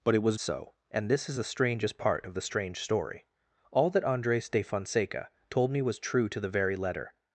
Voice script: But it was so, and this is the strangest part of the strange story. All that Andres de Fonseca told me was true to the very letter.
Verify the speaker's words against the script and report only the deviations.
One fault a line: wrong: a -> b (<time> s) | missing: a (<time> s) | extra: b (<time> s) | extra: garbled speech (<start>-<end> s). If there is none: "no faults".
no faults